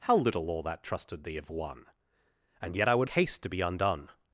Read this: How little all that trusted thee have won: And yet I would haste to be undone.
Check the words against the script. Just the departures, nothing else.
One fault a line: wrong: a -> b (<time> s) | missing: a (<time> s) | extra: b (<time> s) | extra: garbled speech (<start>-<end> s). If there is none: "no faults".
no faults